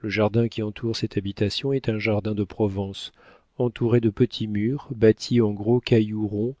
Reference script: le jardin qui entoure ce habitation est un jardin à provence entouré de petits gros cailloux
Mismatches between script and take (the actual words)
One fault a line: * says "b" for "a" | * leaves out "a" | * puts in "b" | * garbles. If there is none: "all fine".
* says "cette" for "ce"
* says "de" for "à"
* puts in "murs bâtis en"